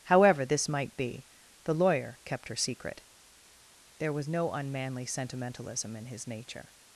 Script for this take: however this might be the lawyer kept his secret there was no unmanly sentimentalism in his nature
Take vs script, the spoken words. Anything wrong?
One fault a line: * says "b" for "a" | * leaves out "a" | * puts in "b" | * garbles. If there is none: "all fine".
* says "her" for "his"